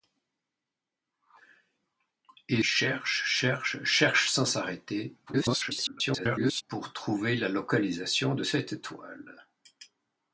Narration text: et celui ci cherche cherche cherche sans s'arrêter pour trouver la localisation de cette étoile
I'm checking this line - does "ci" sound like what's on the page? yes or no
no